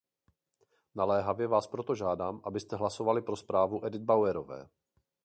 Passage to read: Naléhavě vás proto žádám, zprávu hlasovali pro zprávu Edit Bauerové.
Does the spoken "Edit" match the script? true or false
true